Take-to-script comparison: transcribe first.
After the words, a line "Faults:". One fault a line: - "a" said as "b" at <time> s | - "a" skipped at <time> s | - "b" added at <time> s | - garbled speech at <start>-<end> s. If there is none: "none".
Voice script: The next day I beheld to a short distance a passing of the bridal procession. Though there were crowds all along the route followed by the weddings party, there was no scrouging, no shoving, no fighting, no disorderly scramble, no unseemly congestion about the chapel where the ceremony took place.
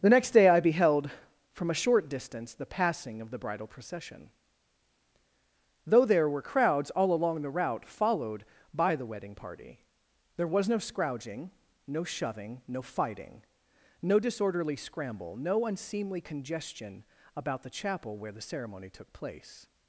The next day I beheld from a short distance the passing of the bridal procession. Though there were crowds all along the route followed by the wedding party, there was no scrouging, no shoving, no fighting, no disorderly scramble, no unseemly congestion about the chapel where the ceremony took place.
Faults:
- "to" said as "from" at 1.5 s
- "a" said as "the" at 2.5 s
- "weddings" said as "wedding" at 9.1 s